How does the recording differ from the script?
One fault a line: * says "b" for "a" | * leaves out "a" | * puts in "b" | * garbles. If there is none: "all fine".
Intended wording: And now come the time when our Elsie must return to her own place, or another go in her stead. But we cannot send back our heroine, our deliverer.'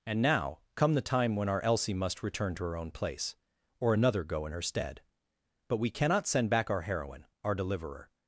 all fine